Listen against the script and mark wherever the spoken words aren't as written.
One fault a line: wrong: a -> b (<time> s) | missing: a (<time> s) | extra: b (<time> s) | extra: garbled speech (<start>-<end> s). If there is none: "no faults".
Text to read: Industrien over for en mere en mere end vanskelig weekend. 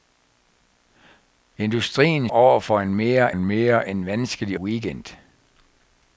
no faults